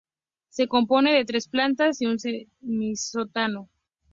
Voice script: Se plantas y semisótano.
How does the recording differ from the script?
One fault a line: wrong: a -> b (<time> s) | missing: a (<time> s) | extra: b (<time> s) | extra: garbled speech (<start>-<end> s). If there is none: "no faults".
extra: compone de tres (0.7 s)
extra: un (2.1 s)